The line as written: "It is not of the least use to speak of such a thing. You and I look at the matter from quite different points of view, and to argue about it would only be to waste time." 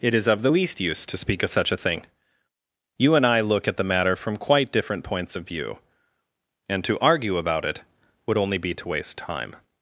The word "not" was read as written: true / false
false